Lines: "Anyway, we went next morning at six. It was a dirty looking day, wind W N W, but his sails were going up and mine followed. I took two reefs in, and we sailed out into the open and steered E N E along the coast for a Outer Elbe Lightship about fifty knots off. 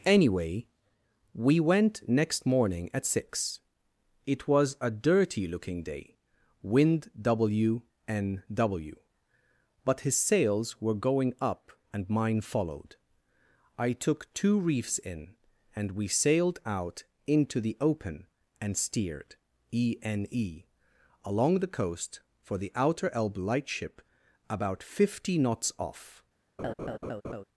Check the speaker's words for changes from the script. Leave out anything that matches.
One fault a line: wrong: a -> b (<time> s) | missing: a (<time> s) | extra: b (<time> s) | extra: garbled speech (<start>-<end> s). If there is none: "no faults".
wrong: a -> the (22.6 s)